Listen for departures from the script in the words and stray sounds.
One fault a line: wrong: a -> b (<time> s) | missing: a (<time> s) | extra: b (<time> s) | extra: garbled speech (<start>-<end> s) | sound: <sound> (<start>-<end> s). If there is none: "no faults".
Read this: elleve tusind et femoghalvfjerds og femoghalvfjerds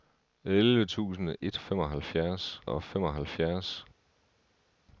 no faults